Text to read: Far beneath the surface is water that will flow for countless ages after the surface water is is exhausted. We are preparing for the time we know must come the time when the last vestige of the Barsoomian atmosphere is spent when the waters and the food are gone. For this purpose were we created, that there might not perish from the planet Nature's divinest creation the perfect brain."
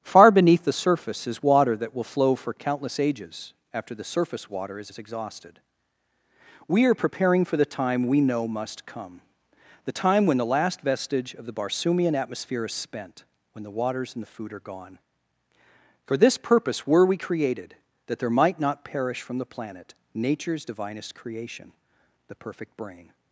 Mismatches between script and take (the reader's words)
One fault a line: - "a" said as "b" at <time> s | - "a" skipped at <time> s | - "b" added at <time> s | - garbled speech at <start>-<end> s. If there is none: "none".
none